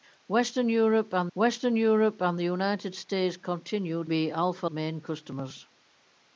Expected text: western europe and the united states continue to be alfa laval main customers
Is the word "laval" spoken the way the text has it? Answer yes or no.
no